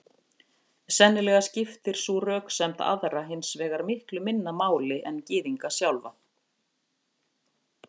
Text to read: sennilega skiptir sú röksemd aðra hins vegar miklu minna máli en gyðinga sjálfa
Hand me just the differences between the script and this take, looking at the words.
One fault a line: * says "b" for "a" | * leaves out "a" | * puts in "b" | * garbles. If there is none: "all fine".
all fine